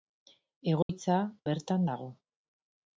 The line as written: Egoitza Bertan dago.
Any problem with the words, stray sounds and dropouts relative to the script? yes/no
yes